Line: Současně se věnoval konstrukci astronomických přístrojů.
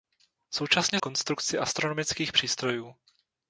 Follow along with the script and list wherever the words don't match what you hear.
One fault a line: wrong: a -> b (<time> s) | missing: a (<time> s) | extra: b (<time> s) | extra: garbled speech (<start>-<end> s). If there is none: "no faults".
missing: se věnoval (1.0 s)